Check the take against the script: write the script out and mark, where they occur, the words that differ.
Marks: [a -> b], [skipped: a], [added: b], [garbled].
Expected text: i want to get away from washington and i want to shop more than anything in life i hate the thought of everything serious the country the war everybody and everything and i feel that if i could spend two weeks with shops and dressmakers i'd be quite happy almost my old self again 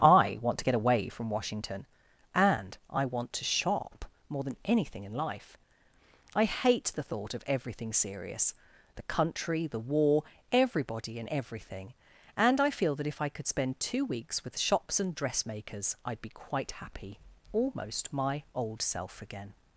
i want to get away from washington and i want to shop more than anything in life i hate the thought of everything serious the country the war everybody and everything and i feel that if i could spend two weeks with shops and dressmakers i'd be quite happy almost my old self again